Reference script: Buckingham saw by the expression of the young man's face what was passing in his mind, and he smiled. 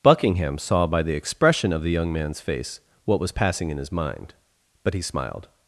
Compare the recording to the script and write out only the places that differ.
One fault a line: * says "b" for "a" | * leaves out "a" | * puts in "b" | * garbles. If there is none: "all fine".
* says "but" for "and"